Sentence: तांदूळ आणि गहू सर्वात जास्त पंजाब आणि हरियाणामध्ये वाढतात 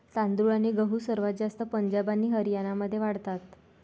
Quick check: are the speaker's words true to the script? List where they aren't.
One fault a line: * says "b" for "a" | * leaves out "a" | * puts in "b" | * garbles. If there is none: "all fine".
all fine